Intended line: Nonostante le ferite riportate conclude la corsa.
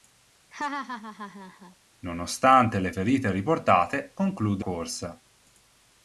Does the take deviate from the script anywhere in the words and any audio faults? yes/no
yes